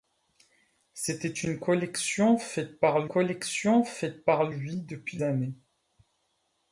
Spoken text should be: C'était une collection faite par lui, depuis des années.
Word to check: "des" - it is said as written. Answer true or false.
false